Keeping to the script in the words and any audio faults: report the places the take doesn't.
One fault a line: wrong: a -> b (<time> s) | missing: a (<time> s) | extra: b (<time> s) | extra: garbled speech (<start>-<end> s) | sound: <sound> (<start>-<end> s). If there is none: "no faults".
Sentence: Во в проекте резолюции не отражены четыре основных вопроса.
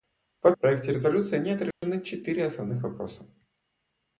sound: dropout (1.7-1.8 s)